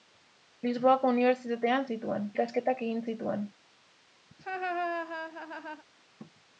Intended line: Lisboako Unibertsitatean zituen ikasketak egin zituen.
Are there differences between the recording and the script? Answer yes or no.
no